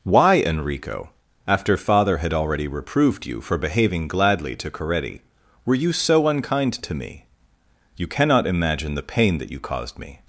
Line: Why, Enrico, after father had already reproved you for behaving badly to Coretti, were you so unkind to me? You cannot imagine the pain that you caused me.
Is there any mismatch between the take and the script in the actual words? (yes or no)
yes